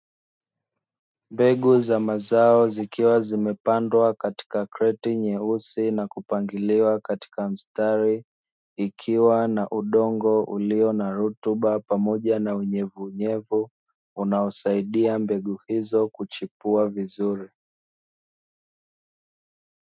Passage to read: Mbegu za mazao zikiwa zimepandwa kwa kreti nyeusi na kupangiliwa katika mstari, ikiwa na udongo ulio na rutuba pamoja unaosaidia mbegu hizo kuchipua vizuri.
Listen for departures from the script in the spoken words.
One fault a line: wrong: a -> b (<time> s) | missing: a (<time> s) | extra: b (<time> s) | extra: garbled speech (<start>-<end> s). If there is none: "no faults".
wrong: kwa -> katika (4.1 s)
extra: na unyevunyevu (12.4 s)